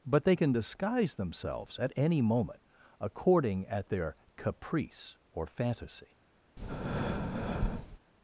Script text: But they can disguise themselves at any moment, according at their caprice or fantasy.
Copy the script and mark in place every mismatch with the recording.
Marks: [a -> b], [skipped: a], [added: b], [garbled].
But they can disguise themselves at any moment, according at their caprice or fantasy.